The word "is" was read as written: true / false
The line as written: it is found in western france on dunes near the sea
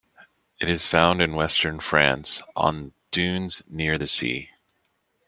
true